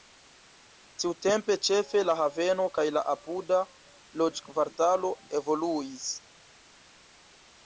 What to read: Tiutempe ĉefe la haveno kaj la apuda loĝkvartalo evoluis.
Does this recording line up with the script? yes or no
yes